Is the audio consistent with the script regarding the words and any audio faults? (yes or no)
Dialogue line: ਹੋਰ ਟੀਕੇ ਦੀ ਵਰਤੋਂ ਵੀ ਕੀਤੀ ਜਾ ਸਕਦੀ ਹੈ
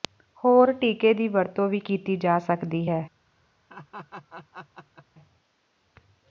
no